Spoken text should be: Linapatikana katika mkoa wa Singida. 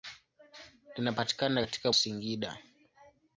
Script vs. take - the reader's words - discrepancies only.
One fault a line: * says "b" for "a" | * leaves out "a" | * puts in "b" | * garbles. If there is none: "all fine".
* leaves out "mkoa wa"